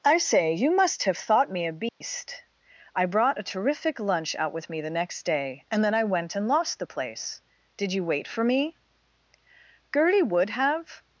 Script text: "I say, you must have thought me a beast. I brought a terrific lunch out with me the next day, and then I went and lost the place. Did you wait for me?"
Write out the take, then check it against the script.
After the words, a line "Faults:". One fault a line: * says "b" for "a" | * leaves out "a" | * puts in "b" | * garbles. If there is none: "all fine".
"I say, you must have thought me a beast. I brought a terrific lunch out with me the next day, and then I went and lost the place. Did you wait for me?" Gertie would have
Faults:
* puts in "Gertie would have"